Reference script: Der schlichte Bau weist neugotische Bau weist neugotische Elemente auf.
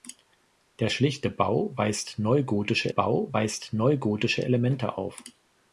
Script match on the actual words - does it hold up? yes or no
yes